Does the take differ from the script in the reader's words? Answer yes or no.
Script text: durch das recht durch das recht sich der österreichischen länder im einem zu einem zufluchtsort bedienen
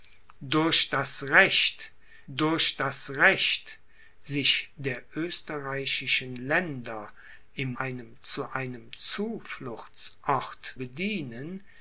no